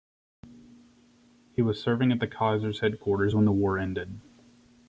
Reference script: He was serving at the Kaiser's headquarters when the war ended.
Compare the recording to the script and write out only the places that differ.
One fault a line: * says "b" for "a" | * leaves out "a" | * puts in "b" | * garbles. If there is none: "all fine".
all fine